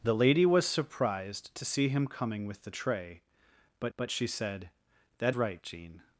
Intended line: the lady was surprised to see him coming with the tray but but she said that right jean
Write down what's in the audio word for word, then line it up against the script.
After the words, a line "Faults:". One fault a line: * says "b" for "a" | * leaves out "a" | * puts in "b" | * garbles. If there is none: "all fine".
the lady was surprised to see him coming with the tray but but she said that right jean
Faults:
all fine